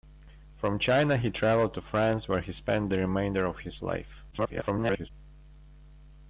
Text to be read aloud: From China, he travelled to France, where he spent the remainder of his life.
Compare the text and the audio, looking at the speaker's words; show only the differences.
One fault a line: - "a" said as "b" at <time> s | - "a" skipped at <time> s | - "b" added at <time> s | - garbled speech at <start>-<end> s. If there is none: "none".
- garbled speech at 4.3-5.1 s